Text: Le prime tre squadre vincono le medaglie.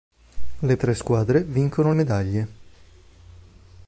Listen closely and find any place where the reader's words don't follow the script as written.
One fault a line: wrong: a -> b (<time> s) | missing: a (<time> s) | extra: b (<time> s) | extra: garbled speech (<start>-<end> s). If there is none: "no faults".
missing: prime (0.8 s)
missing: le (1.9 s)